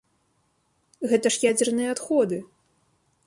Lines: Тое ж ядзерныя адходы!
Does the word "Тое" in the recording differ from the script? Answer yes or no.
yes